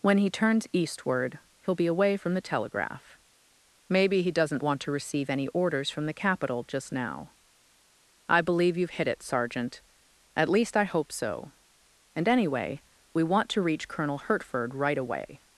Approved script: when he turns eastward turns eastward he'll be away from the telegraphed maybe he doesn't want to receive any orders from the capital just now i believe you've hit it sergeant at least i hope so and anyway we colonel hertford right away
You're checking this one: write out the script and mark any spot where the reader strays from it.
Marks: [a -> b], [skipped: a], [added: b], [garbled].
when he turns eastward [skipped: turns eastward] he'll be away from the [telegraphed -> telegraph] maybe he doesn't want to receive any orders from the capital just now i believe you've hit it sergeant at least i hope so and anyway we [added: want to reach] colonel hertford right away